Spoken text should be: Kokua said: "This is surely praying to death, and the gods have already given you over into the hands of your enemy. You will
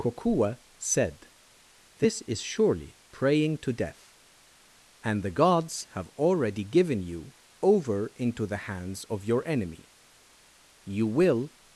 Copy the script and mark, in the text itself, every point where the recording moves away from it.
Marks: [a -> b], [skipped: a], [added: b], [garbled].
Kokua said: "This is surely praying to death, and the gods have already given you over into the hands of your enemy. You will